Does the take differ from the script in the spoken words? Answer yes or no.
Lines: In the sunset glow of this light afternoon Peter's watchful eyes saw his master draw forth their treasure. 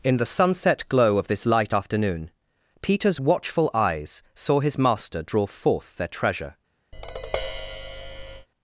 no